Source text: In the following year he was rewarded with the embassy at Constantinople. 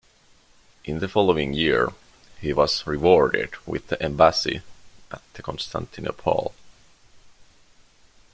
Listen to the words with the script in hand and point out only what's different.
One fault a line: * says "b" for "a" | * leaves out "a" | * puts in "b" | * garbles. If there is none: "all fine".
all fine